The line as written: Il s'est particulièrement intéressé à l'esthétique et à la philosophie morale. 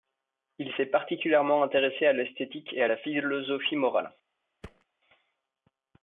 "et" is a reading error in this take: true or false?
false